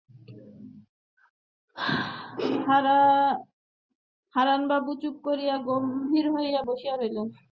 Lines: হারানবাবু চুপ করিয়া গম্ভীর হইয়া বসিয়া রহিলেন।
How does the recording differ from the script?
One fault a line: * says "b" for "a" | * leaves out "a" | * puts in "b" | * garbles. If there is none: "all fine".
all fine